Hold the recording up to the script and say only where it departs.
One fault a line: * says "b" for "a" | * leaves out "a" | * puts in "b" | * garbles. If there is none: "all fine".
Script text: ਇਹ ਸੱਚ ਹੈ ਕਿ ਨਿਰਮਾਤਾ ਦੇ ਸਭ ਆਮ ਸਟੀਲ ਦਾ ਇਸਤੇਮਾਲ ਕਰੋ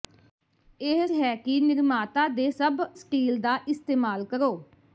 * leaves out "ਸੱਚ"
* leaves out "ਆਮ"